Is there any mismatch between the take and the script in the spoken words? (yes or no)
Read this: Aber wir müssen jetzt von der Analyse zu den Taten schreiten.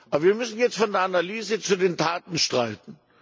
no